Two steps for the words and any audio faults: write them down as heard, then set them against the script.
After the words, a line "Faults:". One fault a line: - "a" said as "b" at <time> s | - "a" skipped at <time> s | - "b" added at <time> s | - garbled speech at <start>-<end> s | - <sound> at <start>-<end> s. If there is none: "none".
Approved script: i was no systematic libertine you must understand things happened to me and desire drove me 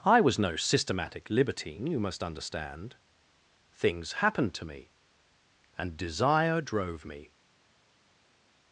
i was no systematic libertine you must understand things happened to me and desire drove me
Faults:
none